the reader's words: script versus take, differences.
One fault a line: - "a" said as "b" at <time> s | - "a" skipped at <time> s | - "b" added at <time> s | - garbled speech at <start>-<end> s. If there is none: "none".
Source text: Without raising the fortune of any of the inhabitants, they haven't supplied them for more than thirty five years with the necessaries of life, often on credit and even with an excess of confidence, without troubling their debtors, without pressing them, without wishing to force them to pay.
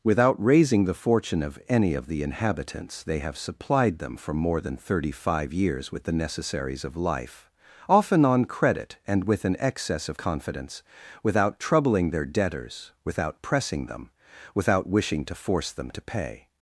- "haven't" said as "have" at 3.2 s
- "even" skipped at 9.2 s